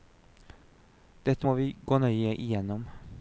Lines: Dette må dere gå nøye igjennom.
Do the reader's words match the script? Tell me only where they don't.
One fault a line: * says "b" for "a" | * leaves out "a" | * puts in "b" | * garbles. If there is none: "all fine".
* says "vi" for "dere"